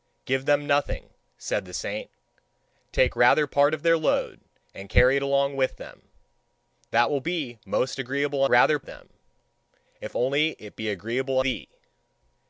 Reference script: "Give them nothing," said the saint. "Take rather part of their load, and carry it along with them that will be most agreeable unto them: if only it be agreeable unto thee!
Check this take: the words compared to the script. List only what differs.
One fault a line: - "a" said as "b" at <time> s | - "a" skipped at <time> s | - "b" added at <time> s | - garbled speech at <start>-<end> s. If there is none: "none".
- "unto" said as "rather" at 8.5 s
- "unto" skipped at 11.4 s